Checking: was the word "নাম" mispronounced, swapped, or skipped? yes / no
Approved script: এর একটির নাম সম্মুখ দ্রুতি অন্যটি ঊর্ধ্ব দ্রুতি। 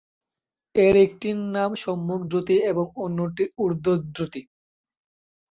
no